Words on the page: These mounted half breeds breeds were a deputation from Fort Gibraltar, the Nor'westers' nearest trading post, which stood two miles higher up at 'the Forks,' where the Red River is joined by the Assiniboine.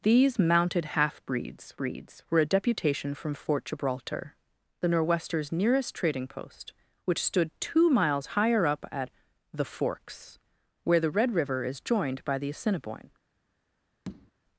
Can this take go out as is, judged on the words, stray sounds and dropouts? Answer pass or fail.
fail